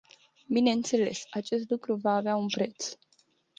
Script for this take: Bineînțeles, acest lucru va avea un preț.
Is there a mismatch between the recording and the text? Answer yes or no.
no